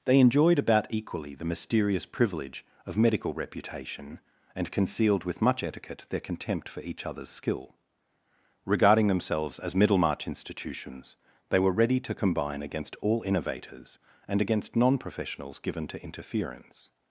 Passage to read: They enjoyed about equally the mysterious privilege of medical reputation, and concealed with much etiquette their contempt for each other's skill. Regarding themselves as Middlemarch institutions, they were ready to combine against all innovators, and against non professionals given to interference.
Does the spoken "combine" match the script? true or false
true